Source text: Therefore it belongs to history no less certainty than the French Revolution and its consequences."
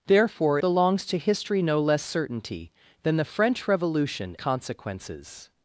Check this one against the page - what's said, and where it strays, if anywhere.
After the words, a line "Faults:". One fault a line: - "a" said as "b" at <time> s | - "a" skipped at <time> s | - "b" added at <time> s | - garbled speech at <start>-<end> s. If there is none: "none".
Therefore belongs to history no less certainty than the French Revolution consequences."
Faults:
- "it" skipped at 0.6 s
- "and its" skipped at 4.4 s